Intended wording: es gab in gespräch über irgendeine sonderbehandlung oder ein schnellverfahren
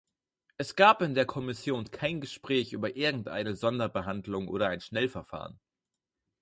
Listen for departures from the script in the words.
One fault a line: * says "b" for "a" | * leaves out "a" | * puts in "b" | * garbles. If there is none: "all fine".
* puts in "der kommission kein"